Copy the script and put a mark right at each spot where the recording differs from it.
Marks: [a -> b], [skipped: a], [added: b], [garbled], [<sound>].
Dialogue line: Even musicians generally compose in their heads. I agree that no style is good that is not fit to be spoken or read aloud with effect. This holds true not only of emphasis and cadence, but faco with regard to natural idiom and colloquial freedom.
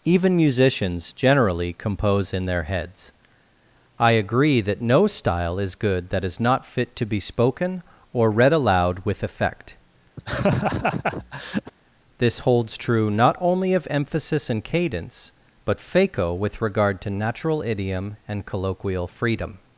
Even musicians generally compose in their heads. I agree that no style is good that is not fit to be spoken or read aloud with effect. [laugh] This holds true not only of emphasis and cadence, but faco with regard to natural idiom and colloquial freedom.